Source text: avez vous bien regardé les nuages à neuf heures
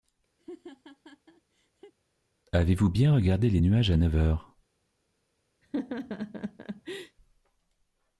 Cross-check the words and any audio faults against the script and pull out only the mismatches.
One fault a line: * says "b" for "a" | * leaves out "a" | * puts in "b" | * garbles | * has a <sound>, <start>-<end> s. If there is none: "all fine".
* has a laugh, 0.4-1.9 s
* has a laugh, 5.6-7.2 s